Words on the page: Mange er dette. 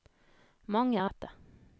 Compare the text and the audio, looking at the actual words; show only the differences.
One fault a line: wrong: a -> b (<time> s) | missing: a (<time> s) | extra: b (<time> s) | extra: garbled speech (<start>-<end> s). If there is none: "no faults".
no faults